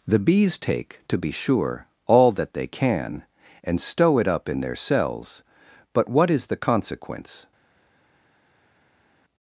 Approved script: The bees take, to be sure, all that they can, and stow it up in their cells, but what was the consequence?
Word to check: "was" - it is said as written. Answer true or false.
false